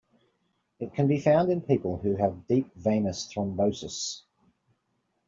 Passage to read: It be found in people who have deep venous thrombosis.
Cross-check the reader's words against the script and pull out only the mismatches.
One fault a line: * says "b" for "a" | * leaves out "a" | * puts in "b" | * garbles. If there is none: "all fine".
* puts in "can"